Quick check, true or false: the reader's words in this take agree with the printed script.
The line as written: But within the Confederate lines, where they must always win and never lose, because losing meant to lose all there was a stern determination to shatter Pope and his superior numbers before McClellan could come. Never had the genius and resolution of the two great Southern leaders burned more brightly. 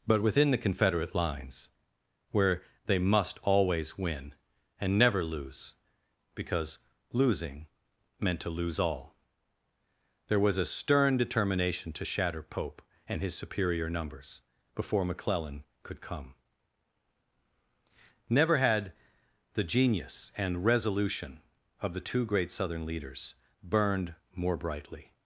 true